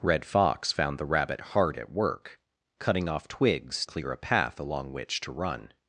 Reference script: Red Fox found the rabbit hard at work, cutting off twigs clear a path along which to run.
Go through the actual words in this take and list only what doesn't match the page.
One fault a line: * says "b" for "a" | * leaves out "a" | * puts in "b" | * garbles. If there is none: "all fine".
all fine